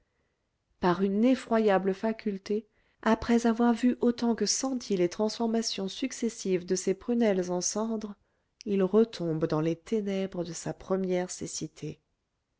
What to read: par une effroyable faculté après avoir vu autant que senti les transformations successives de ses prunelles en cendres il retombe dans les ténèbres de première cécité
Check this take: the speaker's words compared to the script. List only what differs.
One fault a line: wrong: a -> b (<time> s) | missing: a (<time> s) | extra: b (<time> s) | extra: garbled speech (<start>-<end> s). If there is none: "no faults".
extra: sa (10.5 s)